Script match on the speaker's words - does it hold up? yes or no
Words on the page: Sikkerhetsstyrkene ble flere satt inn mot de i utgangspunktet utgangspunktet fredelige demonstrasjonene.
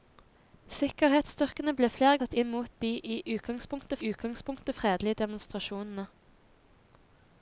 yes